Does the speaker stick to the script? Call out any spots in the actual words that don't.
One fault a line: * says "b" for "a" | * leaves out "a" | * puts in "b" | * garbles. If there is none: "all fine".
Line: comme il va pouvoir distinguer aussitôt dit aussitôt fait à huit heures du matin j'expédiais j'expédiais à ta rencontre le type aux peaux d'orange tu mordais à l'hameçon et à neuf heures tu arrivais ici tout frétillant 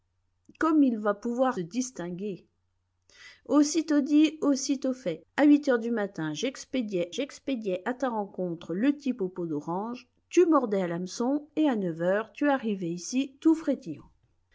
all fine